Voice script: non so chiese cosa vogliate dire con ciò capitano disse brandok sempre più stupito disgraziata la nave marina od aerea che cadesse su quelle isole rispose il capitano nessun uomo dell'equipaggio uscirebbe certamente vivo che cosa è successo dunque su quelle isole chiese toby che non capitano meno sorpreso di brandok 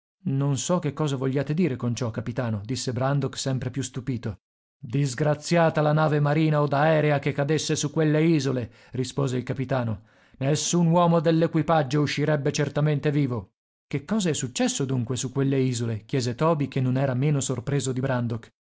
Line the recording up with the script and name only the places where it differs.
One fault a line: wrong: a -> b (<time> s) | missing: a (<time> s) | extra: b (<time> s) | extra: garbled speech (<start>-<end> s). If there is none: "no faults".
wrong: chiese -> che (0.8 s)
wrong: capitano -> era (17.0 s)